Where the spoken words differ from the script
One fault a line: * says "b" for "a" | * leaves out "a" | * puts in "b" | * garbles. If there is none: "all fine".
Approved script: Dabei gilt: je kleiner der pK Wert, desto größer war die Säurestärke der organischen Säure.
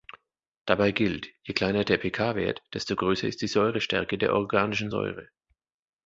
* says "ist" for "war"